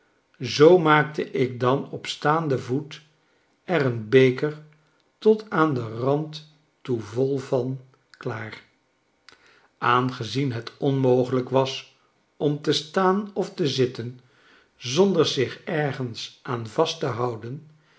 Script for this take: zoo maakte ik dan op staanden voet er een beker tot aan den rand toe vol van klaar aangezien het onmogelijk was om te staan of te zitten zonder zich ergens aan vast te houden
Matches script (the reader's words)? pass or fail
pass